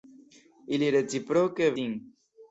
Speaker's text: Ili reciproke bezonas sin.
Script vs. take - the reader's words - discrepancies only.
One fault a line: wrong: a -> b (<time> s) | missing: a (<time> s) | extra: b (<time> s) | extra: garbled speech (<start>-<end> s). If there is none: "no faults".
missing: bezonas (1.7 s)